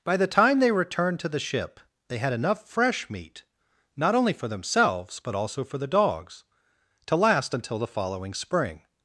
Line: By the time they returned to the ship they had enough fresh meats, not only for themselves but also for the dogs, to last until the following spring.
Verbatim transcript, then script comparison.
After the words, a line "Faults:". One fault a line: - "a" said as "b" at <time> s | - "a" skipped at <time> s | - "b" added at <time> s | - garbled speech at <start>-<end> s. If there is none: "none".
By the time they returned to the ship they had enough fresh meat, not only for themselves but also for the dogs, to last until the following spring.
Faults:
- "meats" said as "meat" at 3.1 s